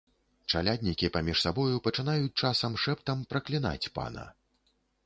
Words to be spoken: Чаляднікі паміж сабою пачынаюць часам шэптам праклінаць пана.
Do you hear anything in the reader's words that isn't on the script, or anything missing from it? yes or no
no